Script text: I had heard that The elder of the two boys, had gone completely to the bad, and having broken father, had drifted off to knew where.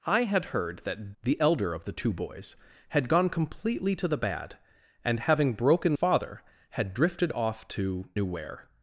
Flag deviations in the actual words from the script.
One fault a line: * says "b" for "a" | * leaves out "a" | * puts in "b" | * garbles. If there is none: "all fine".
all fine